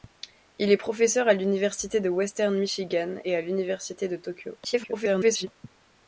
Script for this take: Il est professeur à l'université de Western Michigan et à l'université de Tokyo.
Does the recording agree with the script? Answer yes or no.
no